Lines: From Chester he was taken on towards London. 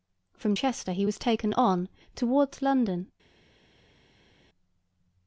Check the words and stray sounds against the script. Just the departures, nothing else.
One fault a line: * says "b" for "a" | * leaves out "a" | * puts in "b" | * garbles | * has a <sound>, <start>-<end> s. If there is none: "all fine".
all fine